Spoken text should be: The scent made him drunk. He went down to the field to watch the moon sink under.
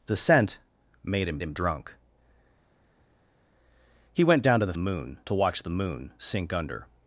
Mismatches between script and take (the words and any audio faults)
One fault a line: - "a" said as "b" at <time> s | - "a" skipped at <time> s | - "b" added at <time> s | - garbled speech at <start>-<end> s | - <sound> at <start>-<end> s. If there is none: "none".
- "him" added at 1.4 s
- "field" said as "moon" at 4.8 s